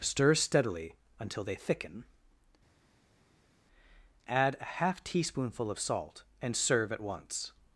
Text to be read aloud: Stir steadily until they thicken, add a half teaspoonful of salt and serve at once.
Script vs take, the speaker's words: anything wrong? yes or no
no